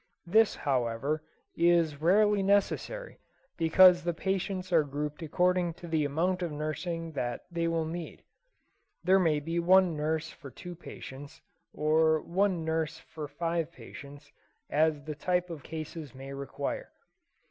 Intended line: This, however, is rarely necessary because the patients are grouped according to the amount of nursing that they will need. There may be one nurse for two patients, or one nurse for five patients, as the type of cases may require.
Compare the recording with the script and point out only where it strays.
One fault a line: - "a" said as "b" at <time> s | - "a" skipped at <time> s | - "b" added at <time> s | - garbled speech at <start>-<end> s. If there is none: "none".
none